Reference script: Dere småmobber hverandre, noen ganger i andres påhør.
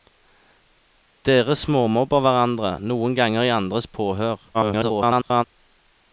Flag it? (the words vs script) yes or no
yes